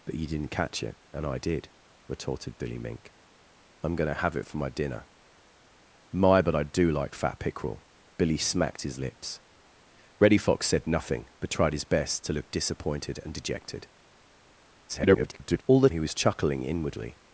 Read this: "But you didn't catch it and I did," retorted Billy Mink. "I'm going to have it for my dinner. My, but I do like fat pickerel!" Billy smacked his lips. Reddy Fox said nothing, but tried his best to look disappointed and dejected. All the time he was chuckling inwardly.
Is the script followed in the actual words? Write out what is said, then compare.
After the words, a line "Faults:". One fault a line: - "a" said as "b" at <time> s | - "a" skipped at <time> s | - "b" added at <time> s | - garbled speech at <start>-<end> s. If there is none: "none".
"But you didn't catch it and I did," retorted Billy Mink. "I'm going to have it for my dinner. My, but I do like fat pickerel!" Billy smacked his lips. Reddy Fox said nothing, but tried his best to look disappointed and dejected. [garbled] All the he was chuckling inwardly.
Faults:
- garbled speech at 14.9-15.6 s
- "time" skipped at 15.9 s